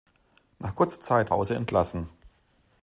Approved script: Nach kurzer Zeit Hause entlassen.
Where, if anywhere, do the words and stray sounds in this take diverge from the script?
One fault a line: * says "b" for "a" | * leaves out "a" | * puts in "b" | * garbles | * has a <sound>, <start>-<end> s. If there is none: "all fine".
all fine